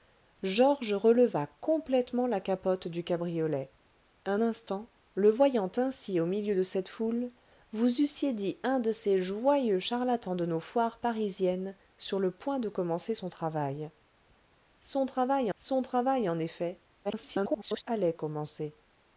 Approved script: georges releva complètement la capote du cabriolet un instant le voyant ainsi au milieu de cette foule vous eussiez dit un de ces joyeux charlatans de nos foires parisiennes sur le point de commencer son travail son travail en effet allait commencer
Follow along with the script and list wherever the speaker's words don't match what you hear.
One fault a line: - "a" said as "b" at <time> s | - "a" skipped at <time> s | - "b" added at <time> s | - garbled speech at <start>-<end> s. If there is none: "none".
- "son travail" added at 15.5 s
- garbled speech at 17.0-17.8 s